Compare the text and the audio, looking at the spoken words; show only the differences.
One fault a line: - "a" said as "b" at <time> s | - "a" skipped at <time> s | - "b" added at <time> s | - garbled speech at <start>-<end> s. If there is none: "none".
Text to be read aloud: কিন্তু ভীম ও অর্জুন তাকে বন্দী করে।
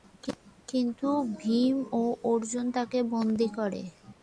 none